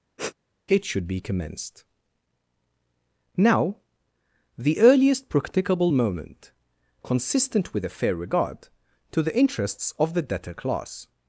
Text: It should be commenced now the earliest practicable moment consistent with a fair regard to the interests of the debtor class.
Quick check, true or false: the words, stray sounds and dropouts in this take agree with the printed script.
false